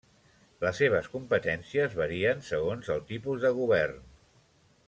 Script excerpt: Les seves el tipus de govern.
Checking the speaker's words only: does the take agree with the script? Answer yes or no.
no